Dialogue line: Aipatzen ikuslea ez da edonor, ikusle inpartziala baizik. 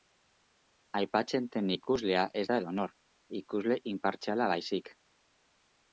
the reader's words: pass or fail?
fail